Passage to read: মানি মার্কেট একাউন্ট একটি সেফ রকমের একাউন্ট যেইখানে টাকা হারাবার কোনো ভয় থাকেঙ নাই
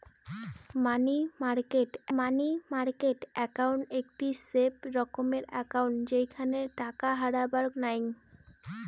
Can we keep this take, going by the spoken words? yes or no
no